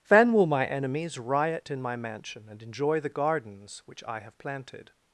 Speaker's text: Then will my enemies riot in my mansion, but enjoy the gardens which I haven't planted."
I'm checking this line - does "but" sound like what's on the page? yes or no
no